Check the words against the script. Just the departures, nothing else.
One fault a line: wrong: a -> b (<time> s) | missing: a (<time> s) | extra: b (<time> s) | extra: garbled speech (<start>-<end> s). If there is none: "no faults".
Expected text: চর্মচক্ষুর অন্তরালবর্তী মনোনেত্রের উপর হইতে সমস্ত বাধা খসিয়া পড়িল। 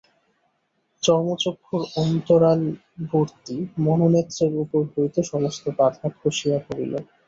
no faults